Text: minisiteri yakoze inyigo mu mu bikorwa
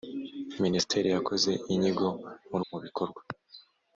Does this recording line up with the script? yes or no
yes